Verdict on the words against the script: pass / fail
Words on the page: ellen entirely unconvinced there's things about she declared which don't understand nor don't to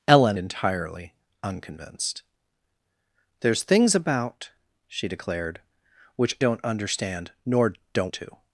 pass